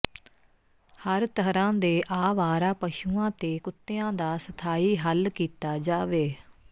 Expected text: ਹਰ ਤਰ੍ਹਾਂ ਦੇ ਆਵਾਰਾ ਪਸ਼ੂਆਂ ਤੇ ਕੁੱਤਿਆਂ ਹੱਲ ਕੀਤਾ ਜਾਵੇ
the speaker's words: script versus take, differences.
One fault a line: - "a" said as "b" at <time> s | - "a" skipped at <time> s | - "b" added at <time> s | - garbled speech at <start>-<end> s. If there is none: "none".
- "ਦਾ ਸਥਾਈ" added at 4.1 s